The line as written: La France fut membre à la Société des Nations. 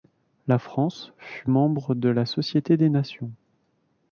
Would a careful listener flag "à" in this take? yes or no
yes